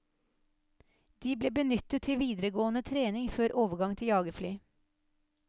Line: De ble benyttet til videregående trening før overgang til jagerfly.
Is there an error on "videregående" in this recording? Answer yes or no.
no